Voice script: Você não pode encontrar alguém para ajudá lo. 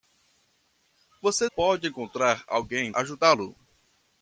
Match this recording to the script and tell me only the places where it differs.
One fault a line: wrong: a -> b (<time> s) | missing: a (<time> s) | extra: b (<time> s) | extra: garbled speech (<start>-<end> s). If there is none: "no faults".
missing: não (1.5 s)
missing: para (2.9 s)